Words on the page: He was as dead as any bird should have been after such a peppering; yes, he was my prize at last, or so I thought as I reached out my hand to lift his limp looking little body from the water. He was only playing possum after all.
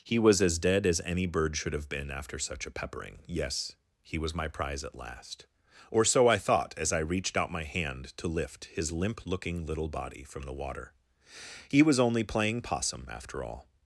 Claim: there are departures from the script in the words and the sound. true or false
false